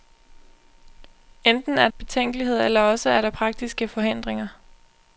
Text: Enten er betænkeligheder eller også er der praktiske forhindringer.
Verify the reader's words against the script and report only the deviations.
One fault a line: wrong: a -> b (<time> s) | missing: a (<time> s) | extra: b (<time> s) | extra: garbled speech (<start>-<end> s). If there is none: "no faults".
no faults